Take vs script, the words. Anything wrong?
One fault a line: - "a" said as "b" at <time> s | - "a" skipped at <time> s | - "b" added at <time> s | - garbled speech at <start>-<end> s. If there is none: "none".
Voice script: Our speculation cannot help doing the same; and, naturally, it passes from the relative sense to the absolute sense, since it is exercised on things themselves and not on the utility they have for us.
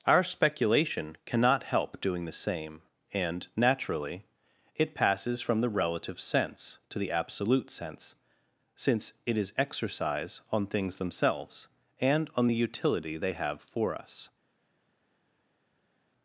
- "exercised" said as "exercise" at 9.6 s
- "not" skipped at 12.3 s